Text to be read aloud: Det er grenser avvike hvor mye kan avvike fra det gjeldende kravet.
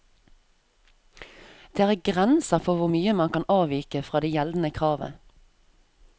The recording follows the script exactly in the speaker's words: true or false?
false